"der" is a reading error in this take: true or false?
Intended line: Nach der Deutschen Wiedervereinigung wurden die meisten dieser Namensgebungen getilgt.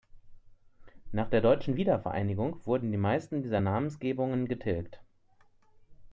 false